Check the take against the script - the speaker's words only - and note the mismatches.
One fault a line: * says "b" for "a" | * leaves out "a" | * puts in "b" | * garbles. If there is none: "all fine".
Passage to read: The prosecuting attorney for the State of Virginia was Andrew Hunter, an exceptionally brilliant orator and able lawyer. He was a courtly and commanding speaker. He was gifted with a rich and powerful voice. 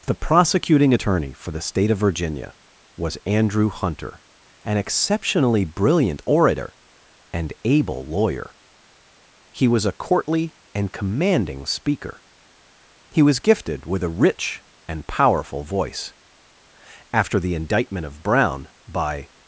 * puts in "After the indictment of Brown by"